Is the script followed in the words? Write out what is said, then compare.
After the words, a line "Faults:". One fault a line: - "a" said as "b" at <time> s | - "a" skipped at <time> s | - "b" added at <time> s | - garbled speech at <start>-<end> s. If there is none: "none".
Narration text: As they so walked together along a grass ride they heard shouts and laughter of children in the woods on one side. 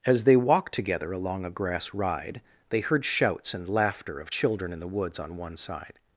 As they walked together along a grass ride they heard shouts and laughter of children in the woods on one side.
Faults:
- "so" skipped at 0.3 s